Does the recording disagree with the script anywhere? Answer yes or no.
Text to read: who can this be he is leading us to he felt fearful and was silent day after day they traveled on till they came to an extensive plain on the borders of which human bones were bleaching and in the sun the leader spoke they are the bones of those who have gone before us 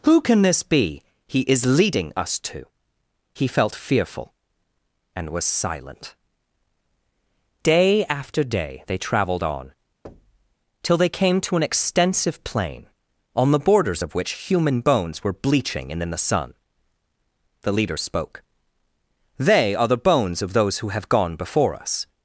no